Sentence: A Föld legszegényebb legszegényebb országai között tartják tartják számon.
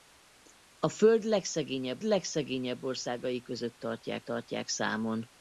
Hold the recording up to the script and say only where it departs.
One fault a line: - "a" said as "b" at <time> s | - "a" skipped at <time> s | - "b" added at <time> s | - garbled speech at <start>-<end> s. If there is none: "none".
none